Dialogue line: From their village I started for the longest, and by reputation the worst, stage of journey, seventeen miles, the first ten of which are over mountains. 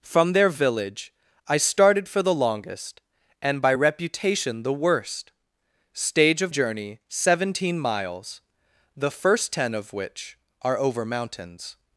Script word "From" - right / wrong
right